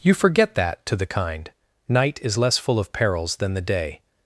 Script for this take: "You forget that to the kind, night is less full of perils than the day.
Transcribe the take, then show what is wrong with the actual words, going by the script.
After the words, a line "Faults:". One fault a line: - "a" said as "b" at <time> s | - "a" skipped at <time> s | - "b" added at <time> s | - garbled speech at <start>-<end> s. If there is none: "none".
"You forget that to the kind, night is less full of perils than the day.
Faults:
none